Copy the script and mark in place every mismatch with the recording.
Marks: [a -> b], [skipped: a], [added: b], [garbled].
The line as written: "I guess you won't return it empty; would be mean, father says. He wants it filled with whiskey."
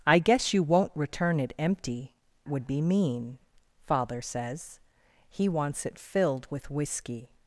"I guess you won't return it empty; would be mean, father says. He wants it filled with whiskey."